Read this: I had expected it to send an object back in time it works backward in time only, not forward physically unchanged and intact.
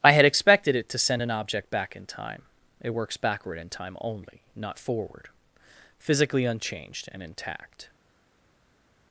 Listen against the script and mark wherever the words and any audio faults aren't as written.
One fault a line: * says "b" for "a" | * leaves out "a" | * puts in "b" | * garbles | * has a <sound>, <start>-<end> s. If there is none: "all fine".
all fine